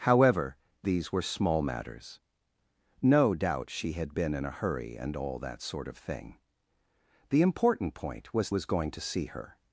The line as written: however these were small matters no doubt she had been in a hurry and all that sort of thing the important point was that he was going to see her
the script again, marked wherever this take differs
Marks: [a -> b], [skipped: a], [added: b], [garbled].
however these were small matters no doubt she had been in a hurry and all that sort of thing the important point was [skipped: that he] was going to see her